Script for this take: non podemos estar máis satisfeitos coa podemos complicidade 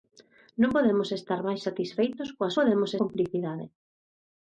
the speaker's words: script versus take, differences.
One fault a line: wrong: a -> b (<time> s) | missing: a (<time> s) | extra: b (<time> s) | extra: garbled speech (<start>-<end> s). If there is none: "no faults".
no faults